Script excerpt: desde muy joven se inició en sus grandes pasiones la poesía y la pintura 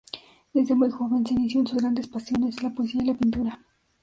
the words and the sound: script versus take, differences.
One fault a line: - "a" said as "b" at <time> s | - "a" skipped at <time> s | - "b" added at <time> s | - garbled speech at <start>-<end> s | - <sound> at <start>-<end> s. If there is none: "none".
none